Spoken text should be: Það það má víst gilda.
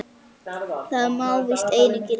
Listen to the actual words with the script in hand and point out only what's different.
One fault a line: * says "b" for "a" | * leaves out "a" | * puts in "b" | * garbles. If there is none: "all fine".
* leaves out "það"
* puts in "einu"